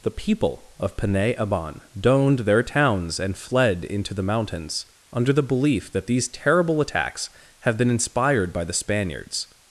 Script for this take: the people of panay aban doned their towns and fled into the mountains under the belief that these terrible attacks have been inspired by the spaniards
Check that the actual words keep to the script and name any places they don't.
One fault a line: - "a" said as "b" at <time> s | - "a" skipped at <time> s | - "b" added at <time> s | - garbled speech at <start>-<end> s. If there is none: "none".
none